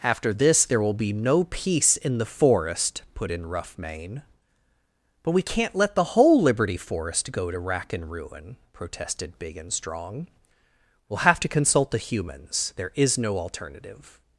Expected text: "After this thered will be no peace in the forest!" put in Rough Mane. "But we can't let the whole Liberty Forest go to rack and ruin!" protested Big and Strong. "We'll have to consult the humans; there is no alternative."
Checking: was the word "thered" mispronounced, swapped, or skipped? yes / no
yes